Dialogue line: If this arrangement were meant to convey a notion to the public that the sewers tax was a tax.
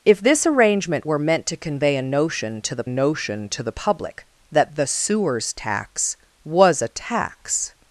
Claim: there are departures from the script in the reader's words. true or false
true